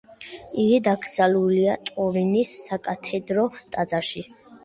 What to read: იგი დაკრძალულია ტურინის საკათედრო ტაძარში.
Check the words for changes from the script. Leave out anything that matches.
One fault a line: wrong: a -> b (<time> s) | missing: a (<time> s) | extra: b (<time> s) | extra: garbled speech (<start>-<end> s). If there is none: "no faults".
no faults